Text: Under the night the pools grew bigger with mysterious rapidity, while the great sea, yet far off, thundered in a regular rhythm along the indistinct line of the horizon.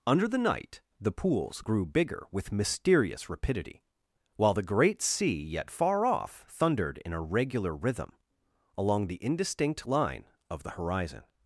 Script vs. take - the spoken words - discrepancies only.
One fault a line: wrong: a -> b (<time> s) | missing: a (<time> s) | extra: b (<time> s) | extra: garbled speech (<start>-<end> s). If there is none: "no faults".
no faults